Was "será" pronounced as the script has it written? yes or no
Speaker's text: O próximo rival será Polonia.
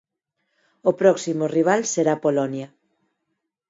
yes